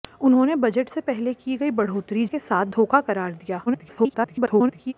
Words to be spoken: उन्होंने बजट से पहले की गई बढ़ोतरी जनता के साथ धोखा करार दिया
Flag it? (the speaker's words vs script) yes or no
yes